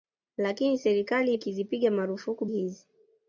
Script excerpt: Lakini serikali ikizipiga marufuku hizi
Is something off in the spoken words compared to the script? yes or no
no